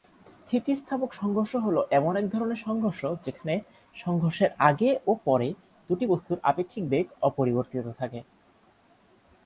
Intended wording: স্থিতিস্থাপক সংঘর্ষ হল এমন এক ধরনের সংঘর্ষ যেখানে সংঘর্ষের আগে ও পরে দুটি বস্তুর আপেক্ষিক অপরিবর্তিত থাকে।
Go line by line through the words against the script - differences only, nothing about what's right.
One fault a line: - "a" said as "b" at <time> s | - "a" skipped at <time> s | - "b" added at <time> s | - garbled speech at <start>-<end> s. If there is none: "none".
- "বেগ" added at 6.9 s